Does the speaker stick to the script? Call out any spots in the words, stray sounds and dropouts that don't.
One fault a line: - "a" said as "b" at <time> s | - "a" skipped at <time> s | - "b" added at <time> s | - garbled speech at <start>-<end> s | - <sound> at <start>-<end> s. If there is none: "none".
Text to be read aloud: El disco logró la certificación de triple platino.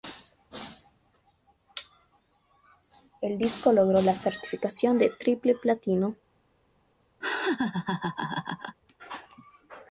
- laugh at 7.2-8.8 s